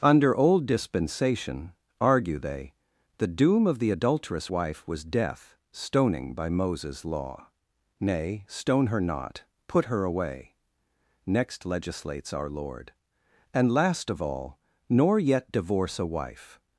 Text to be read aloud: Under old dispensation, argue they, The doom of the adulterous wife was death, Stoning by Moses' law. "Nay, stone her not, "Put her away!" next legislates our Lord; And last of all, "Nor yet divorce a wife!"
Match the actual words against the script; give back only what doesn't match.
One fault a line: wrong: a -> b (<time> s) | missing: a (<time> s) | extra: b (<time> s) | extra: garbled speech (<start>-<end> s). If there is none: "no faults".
no faults